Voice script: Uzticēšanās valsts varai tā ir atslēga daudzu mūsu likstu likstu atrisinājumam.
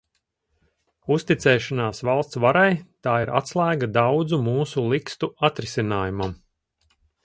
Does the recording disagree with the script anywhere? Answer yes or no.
yes